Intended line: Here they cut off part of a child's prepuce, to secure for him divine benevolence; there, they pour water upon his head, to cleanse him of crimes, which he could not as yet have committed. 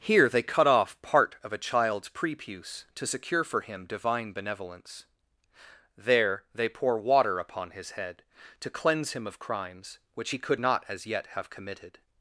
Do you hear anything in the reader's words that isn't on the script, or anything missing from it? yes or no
no